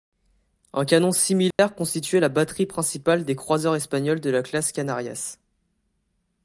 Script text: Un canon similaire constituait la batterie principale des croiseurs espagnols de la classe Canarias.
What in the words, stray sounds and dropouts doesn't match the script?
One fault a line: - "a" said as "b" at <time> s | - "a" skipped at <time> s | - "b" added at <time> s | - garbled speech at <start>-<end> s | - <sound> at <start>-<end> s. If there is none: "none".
- dropout at 1.5-1.6 s